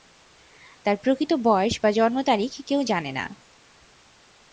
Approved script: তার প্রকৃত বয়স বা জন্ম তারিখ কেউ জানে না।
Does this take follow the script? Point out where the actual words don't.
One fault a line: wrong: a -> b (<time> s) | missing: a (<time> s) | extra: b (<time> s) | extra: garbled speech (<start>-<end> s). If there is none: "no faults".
no faults